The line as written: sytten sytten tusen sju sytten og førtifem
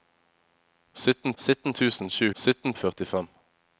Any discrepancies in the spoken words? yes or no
no